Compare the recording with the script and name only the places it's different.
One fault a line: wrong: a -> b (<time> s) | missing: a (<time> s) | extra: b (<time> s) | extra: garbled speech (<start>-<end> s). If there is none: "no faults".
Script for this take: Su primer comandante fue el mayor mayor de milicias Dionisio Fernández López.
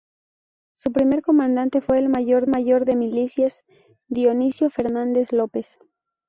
no faults